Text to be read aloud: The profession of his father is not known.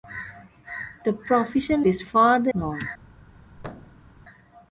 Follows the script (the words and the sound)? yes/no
no